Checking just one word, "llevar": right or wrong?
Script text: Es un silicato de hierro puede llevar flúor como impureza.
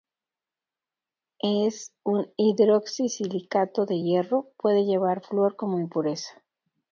right